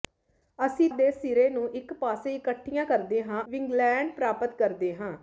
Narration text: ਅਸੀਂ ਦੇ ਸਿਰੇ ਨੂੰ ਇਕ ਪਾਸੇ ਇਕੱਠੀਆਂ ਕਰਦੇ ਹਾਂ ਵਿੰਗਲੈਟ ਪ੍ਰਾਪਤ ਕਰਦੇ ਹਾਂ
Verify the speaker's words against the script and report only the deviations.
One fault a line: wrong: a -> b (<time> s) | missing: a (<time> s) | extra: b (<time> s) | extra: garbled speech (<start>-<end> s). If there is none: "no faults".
no faults